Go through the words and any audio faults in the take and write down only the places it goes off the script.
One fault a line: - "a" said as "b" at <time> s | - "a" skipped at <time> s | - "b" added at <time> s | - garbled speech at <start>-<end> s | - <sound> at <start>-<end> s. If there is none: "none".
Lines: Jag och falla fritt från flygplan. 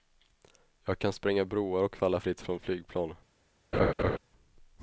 - "kan spränga broar" added at 1.0 s
- laugh at 3.7-4.2 s